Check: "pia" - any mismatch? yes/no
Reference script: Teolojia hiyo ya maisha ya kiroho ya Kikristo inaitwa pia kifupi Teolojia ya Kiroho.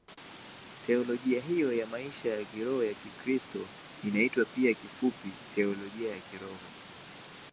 no